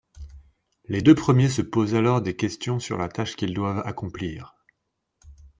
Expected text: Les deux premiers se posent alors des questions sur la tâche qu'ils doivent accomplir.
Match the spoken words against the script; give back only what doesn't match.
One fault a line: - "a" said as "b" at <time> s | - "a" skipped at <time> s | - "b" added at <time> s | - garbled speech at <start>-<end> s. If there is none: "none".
none